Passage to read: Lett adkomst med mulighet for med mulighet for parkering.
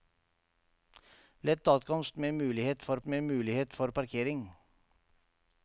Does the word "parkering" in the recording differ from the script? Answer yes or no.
no